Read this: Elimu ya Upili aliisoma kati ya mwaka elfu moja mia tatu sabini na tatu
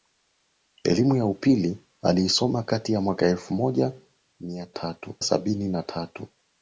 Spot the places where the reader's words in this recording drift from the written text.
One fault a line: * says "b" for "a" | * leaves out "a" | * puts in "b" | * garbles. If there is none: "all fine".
all fine